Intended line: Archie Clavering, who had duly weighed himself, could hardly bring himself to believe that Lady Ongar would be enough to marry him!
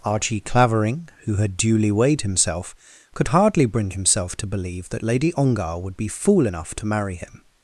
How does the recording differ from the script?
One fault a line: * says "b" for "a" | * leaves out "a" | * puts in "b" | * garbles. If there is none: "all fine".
* puts in "fool"